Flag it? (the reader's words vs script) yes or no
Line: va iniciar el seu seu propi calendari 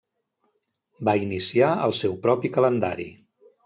yes